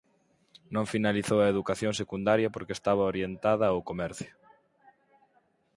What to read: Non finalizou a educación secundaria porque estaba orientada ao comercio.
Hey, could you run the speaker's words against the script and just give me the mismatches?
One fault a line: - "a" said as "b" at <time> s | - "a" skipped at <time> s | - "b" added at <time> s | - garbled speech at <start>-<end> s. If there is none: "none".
none